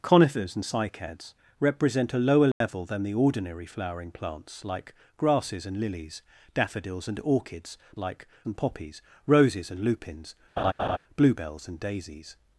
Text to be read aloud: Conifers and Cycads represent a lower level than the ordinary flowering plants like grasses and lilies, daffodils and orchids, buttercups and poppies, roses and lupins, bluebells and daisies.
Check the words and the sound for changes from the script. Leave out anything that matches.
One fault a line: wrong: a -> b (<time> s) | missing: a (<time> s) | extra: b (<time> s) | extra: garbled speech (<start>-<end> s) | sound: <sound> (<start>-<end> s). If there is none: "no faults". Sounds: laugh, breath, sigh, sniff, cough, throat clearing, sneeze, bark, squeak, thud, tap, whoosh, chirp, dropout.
sound: dropout (2.5-2.6 s)
wrong: buttercups -> like (8.0 s)
sound: laugh (10.6-11.0 s)